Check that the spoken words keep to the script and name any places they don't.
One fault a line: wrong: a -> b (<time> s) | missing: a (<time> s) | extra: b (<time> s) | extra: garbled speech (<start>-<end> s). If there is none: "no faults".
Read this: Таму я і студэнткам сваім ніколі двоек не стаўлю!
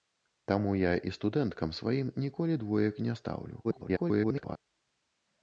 extra: garbled speech (3.6-4.6 s)